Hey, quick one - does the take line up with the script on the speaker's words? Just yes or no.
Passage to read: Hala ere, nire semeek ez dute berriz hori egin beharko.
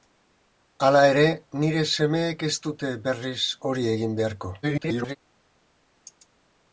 no